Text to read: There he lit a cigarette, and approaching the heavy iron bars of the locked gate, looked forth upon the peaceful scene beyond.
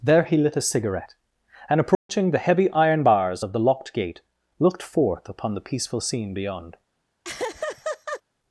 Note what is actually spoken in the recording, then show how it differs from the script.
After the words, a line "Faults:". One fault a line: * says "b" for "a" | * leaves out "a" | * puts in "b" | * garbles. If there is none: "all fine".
There he lit a cigarette, and approaching the heavy iron bars of the locked gate, looked forth upon the peaceful scene beyond.
Faults:
all fine